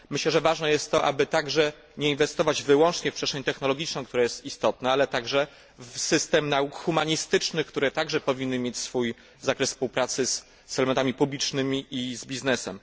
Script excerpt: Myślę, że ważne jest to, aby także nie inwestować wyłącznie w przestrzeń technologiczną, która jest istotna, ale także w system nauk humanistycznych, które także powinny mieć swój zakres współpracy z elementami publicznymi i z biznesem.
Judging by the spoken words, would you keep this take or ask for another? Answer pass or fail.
pass